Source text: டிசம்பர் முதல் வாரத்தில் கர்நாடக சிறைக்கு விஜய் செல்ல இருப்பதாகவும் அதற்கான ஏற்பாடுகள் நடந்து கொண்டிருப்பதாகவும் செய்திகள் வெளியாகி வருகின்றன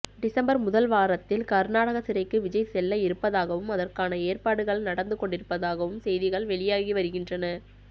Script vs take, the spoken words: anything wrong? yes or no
no